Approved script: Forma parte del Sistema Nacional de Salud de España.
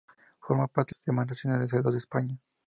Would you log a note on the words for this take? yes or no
yes